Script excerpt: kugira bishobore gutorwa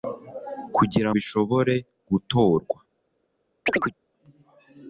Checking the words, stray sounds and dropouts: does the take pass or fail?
fail